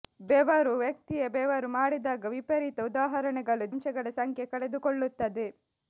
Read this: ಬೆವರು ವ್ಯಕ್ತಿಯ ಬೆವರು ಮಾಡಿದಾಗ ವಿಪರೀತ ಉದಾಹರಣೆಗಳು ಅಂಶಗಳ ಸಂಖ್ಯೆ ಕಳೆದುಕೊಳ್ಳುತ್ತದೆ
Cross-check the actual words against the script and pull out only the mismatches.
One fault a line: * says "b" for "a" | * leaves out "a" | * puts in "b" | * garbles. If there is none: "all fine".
all fine